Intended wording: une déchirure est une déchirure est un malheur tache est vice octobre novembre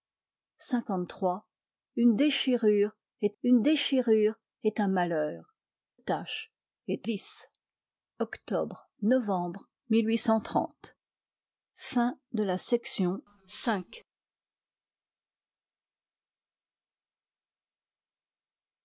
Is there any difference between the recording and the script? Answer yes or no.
no